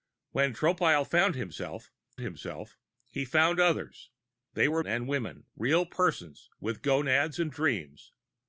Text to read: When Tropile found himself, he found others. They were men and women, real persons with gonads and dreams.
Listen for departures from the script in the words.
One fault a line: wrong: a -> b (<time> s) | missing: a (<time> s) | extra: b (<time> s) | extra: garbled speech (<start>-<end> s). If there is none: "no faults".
extra: himself (2.2 s)
missing: men (4.8 s)